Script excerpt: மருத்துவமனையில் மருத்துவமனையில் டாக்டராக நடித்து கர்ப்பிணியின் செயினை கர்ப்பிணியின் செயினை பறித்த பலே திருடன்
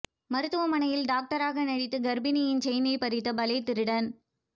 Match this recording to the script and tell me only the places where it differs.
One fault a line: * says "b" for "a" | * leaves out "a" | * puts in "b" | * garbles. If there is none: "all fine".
* leaves out "மருத்துவமனையில்"
* leaves out "கர்ப்பிணியின் செயினை"